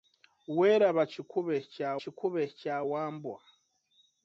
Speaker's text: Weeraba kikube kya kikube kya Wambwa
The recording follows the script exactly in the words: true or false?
true